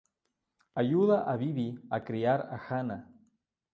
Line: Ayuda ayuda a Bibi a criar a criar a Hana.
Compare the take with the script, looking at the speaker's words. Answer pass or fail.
fail